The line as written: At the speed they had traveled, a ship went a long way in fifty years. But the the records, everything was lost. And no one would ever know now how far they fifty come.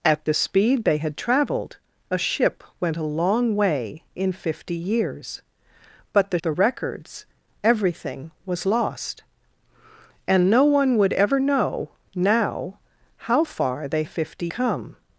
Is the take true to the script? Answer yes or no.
yes